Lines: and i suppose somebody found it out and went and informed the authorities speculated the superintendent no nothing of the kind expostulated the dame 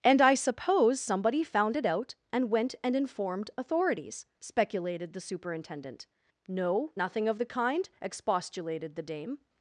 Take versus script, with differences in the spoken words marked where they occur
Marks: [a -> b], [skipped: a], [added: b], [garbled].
and i suppose somebody found it out and went and informed [skipped: the] authorities speculated the superintendent no nothing of the kind expostulated the dame